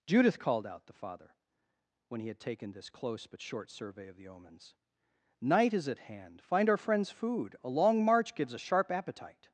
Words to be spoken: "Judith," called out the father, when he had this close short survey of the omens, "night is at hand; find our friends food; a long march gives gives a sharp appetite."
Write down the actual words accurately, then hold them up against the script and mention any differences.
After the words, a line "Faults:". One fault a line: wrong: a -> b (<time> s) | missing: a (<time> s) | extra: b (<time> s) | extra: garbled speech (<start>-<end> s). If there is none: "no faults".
"Judith," called out the father, when he had taken this close but short survey of the omens, "night is at hand; find our friends food; a long march gives a sharp appetite."
Faults:
extra: taken (2.4 s)
extra: but (3.2 s)
missing: gives (8.5 s)